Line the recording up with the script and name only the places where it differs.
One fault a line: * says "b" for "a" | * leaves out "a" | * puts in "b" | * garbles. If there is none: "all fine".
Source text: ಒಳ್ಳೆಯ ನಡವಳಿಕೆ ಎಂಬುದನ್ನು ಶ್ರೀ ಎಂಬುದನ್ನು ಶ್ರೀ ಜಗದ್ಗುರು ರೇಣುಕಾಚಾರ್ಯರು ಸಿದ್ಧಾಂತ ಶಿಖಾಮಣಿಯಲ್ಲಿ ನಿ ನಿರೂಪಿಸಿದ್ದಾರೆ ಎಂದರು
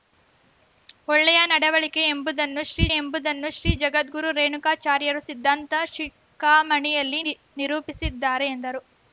all fine